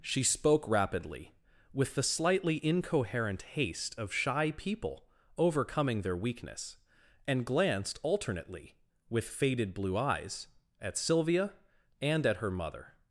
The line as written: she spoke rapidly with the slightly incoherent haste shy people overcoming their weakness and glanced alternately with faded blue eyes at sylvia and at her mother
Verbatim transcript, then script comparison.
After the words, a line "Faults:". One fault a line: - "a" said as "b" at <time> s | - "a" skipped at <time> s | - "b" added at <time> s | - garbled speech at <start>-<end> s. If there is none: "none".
she spoke rapidly with the slightly incoherent haste of shy people overcoming their weakness and glanced alternately with faded blue eyes at sylvia and at her mother
Faults:
- "of" added at 4.0 s